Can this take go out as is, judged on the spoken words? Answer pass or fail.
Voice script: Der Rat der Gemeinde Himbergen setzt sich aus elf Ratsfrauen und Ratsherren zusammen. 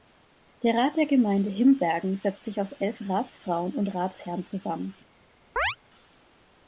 pass